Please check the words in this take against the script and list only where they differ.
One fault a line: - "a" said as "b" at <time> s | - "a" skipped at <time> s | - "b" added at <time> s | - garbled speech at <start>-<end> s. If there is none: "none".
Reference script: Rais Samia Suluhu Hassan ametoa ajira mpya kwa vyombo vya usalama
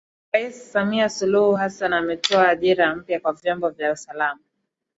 none